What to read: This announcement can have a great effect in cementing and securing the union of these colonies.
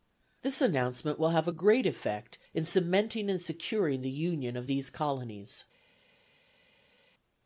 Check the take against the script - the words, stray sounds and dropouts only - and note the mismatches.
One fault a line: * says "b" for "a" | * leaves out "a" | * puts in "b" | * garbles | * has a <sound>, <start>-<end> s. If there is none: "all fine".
* says "will" for "can"